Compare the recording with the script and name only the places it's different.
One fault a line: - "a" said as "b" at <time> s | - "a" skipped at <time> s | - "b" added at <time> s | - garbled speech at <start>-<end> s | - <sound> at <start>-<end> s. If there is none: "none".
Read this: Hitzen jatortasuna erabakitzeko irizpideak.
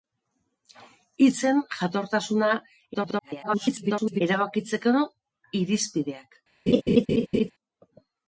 - garbled speech at 2.9-4.2 s
- laugh at 6.7-7.5 s